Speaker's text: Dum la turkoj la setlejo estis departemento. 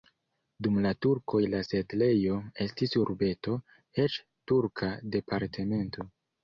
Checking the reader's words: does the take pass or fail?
fail